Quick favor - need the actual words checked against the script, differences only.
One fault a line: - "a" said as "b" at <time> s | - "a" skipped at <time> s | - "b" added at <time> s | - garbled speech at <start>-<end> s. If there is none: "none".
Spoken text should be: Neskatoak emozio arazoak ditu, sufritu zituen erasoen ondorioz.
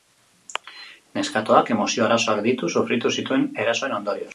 none